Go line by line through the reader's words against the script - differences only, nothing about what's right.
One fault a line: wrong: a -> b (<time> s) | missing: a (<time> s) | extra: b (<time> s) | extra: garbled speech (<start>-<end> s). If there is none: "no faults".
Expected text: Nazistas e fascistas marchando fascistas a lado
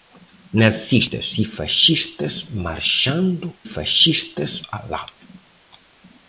no faults